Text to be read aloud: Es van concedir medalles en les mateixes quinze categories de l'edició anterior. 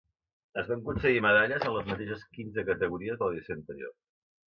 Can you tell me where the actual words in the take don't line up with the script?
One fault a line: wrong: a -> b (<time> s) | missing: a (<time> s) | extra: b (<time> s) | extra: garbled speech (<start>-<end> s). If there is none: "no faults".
no faults